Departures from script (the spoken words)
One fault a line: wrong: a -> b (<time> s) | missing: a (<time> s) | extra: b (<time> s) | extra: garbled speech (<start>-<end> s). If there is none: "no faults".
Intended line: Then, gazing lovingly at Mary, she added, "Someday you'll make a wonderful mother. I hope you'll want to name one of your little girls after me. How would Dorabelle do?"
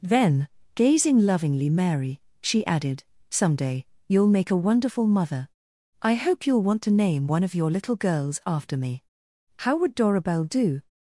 missing: at (1.7 s)